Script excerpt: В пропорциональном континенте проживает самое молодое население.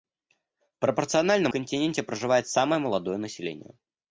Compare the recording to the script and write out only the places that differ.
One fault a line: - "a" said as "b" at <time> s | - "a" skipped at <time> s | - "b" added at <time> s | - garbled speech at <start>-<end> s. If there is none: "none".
none